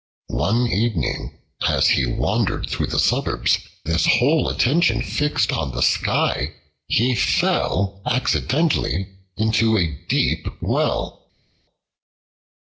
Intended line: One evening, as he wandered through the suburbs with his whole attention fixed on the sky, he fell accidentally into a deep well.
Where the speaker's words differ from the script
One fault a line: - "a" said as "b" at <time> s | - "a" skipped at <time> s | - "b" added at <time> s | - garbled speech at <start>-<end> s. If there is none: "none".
- "with" skipped at 3.6 s